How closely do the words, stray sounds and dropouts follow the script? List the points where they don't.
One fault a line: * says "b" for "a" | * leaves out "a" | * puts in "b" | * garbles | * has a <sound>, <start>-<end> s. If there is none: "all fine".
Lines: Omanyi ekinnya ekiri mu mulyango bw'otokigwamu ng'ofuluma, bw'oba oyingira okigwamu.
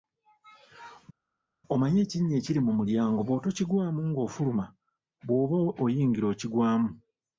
all fine